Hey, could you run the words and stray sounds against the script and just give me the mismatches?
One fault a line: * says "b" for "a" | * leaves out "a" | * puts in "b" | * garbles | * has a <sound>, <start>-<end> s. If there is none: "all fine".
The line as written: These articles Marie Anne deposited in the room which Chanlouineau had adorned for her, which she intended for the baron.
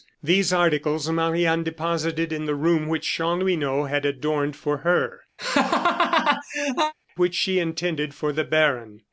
* has a laugh, 5.4-6.9 s